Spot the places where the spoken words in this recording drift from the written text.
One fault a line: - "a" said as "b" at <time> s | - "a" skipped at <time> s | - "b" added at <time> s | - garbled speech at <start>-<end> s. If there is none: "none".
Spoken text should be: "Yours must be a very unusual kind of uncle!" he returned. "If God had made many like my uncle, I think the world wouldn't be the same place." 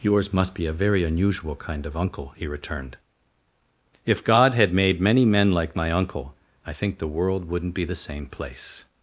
- "men" added at 5.2 s